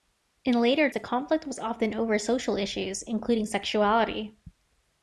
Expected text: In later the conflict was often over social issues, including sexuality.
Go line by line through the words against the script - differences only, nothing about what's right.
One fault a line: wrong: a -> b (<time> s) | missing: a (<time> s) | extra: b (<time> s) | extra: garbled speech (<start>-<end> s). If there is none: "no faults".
no faults